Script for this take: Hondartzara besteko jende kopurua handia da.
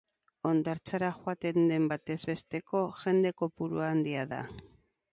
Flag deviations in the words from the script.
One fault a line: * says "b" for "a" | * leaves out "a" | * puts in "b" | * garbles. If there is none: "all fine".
* puts in "joaten den batez"